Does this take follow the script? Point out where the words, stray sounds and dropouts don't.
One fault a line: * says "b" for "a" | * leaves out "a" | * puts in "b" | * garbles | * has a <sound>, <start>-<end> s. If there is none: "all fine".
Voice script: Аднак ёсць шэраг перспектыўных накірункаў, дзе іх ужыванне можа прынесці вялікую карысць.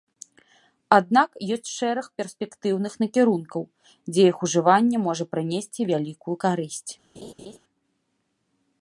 * has a laugh, 7.1-7.6 s